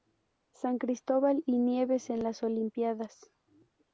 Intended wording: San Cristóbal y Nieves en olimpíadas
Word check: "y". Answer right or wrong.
right